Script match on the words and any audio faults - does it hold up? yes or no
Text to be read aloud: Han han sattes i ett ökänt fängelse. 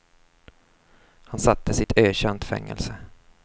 no